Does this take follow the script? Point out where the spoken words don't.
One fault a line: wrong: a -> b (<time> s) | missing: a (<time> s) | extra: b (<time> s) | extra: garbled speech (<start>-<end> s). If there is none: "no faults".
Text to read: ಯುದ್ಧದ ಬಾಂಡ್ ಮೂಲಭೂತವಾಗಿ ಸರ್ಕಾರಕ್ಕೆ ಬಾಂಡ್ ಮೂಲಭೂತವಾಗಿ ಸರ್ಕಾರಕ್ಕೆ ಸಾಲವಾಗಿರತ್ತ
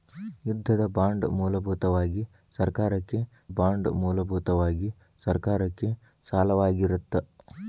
no faults